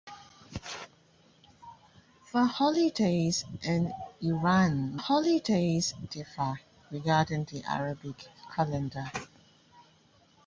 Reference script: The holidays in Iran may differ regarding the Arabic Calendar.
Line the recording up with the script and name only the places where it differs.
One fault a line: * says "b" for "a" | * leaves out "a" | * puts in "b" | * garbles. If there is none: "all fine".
* says "holidays" for "may"